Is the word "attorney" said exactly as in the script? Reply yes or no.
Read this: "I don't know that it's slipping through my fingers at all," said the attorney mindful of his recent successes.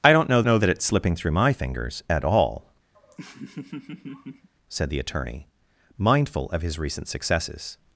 yes